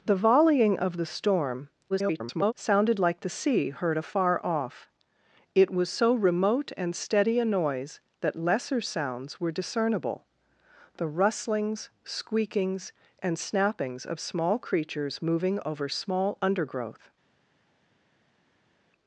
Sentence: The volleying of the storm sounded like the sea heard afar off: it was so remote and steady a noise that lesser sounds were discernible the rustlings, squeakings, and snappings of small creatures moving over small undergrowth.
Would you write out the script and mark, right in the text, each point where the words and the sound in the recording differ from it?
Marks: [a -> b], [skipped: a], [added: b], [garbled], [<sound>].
The volleying of the storm [garbled] sounded like the sea heard afar off: it was so remote and steady a noise that lesser sounds were discernible the rustlings, squeakings, and snappings of small creatures moving over small undergrowth.